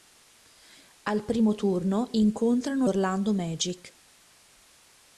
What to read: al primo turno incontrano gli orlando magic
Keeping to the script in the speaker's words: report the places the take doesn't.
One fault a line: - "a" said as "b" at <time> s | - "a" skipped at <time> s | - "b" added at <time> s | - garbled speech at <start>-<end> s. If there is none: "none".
- "gli" skipped at 2.9 s